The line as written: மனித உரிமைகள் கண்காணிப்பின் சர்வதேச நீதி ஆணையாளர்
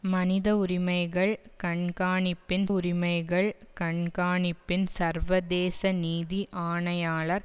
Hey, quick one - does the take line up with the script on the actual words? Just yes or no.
no